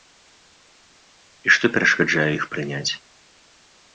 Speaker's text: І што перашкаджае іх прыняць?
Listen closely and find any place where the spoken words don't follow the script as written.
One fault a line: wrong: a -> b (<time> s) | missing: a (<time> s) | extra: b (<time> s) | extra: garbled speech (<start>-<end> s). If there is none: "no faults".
no faults